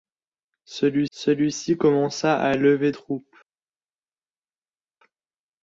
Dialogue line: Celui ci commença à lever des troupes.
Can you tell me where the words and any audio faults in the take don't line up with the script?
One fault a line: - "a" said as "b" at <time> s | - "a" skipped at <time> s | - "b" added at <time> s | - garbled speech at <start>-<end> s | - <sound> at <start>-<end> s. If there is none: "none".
- "celui" added at 1.1 s
- "des" skipped at 2.9 s